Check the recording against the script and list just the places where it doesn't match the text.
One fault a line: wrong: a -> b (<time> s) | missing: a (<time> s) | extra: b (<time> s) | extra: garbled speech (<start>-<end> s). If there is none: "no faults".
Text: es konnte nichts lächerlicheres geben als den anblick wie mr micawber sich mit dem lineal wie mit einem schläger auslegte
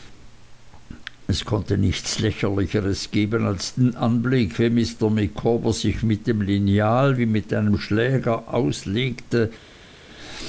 no faults